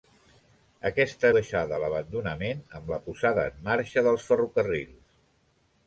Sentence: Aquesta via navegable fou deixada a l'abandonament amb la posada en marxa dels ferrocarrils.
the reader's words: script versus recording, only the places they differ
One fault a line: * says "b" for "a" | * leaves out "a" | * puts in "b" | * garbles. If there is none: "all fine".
* leaves out "via navegable fou"